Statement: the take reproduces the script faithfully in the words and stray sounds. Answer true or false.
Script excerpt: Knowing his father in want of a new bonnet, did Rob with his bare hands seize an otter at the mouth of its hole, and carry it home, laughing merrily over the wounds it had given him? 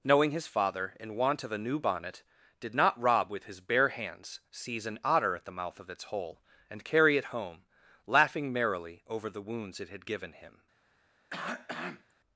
false